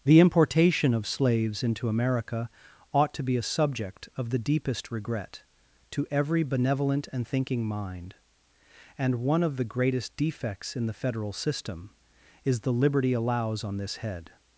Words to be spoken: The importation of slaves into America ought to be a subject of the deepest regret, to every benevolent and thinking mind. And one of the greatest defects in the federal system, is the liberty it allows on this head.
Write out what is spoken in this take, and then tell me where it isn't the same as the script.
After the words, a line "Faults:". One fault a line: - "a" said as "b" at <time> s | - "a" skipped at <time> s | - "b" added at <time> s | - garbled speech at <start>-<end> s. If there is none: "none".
The importation of slaves into America ought to be a subject of the deepest regret, to every benevolent and thinking mind. And one of the greatest defects in the federal system, is the liberty allows on this head.
Faults:
- "it" skipped at 13.1 s